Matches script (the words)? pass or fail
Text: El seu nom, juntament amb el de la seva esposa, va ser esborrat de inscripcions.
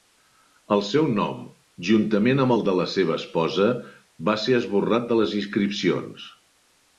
fail